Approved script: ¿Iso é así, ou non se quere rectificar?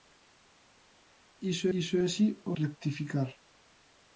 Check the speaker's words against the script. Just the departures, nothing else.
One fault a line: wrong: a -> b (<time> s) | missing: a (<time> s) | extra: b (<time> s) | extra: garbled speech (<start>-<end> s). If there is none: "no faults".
extra: iso (1.8 s)
missing: non se quere (2.5 s)